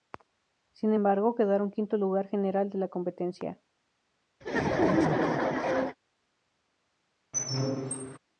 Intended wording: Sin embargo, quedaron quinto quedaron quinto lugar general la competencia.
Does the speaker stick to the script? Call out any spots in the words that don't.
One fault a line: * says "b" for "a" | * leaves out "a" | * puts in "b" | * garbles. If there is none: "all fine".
* leaves out "quedaron quinto"
* puts in "de"